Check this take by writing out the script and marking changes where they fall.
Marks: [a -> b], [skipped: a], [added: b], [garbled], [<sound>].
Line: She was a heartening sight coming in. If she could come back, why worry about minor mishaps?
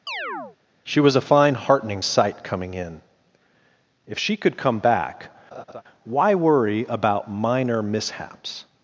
[chirp] She was a [added: fine] heartening sight coming in. If she could come back, [laugh] why worry about minor mishaps?